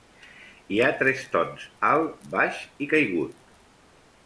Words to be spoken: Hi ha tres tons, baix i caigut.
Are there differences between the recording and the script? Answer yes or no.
yes